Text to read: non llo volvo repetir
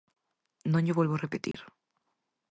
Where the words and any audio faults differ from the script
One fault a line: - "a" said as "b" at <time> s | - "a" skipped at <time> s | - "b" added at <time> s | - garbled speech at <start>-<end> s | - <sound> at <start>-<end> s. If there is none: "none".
- dropout at 1.5-1.5 s